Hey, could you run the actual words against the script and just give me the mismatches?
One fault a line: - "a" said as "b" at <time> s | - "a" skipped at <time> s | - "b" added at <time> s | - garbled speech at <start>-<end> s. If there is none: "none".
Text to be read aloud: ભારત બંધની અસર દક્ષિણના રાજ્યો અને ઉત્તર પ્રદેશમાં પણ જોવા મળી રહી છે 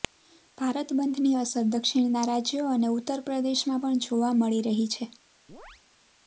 none